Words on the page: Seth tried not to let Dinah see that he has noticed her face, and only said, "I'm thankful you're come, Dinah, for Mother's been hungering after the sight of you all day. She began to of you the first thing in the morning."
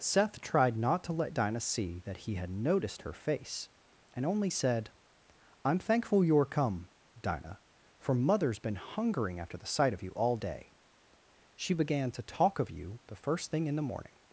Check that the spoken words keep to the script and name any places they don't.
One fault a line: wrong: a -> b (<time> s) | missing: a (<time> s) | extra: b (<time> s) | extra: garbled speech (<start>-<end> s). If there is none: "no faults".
wrong: has -> had (2.3 s)
extra: talk (12.2 s)